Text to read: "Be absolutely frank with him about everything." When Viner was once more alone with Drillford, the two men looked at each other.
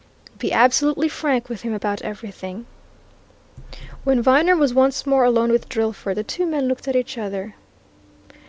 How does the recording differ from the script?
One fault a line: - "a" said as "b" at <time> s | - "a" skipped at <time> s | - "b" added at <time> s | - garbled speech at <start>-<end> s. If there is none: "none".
none